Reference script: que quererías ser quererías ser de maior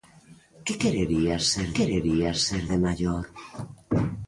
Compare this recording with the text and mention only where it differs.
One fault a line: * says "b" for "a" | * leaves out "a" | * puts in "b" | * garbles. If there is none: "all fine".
all fine